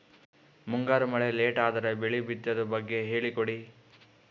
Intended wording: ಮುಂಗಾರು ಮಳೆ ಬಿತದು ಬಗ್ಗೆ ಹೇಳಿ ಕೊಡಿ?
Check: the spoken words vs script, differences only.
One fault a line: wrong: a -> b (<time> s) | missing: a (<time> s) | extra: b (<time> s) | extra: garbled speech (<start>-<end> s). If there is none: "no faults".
extra: ಲೇಟ್ ಅದರ ಬೆಳೆ (1.3 s)